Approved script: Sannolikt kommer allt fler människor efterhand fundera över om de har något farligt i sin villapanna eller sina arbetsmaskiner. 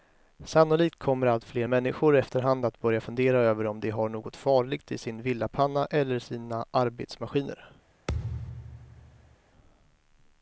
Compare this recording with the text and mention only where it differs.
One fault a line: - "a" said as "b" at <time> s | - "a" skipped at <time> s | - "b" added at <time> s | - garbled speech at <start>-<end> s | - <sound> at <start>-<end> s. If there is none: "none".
- "att börja" added at 2.7 s
- thud at 8.1-9.4 s